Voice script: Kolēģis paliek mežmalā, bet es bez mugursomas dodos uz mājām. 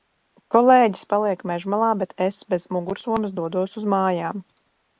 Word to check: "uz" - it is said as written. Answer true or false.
true